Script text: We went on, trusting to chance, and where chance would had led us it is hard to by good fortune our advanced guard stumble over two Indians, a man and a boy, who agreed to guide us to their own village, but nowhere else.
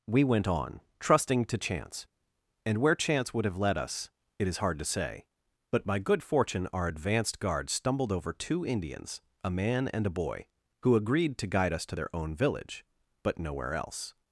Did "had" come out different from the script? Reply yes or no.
yes